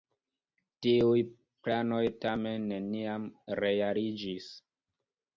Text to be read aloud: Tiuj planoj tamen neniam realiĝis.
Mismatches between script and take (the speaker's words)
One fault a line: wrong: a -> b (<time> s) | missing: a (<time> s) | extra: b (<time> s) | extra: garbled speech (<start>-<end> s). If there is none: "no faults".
no faults